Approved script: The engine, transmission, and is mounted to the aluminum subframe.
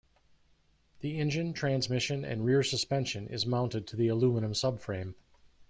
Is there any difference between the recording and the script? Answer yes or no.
yes